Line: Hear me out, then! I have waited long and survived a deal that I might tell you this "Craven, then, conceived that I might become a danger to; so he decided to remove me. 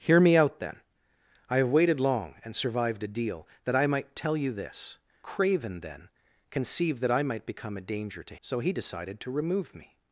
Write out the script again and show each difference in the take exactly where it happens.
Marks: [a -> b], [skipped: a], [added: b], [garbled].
Hear me out, then! I have waited long and survived a deal that I might tell you this "Craven, then, conceived that I might become a danger to; so he decided to remove me.